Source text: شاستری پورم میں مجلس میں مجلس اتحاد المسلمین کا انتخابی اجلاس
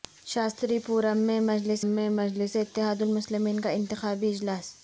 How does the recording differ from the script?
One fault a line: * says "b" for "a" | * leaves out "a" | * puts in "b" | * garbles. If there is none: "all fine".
all fine